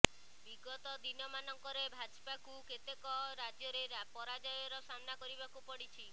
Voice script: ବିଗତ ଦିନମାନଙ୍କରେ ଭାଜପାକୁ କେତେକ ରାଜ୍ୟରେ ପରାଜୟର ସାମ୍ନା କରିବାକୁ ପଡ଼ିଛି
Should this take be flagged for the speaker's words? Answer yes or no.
no